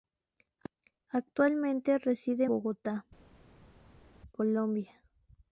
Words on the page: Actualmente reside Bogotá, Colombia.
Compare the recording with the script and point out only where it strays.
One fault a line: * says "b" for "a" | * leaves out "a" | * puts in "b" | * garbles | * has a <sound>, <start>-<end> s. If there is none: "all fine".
all fine